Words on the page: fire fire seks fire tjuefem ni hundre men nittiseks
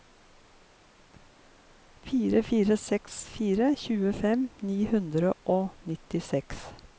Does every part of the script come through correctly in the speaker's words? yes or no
no